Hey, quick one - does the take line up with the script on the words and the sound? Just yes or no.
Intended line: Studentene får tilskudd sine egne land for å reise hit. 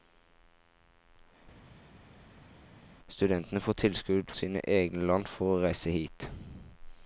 yes